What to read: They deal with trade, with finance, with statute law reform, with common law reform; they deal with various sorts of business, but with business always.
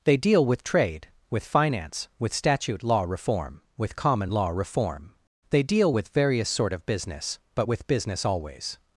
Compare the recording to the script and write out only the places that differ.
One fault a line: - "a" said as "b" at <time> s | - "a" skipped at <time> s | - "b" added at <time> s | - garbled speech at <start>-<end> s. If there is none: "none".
- "sorts" said as "sort" at 6.5 s